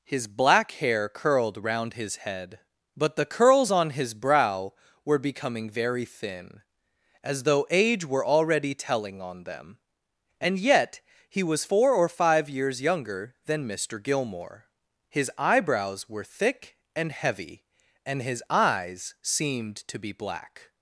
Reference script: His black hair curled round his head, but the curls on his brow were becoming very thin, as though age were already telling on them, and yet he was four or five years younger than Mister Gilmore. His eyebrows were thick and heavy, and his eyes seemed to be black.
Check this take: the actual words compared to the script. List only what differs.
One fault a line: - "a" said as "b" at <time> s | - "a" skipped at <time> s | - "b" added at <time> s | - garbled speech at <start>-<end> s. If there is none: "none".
none